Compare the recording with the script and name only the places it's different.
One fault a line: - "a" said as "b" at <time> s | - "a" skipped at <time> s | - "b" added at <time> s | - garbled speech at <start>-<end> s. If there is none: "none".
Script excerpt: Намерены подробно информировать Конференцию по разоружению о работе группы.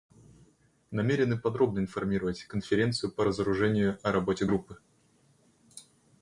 none